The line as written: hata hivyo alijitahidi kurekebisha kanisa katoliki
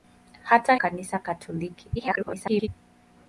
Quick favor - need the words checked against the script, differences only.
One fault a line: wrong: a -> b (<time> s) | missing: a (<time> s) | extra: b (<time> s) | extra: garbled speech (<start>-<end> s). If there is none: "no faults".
missing: hivyo alijitahidi kurekebisha (0.8 s)
extra: garbled speech (2.0-2.7 s)